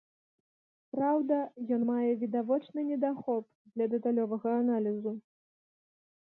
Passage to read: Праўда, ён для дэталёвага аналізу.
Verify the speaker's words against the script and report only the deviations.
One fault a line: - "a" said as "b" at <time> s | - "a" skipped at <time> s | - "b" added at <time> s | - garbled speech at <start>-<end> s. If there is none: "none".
- "мае відавочны недахоп" added at 1.9 s